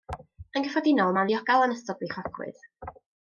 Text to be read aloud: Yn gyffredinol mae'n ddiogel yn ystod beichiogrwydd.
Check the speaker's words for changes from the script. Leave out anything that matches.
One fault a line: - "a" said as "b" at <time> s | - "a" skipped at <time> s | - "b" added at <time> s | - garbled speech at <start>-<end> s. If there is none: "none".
none